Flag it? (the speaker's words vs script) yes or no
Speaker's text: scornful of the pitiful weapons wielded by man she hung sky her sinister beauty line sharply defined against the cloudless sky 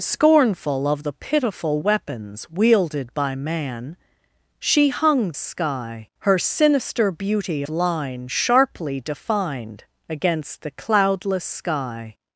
no